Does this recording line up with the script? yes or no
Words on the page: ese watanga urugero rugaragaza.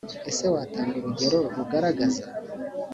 yes